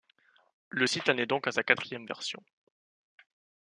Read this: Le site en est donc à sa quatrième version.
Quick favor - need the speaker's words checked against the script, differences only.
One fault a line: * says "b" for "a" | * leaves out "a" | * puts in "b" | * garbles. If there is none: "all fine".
all fine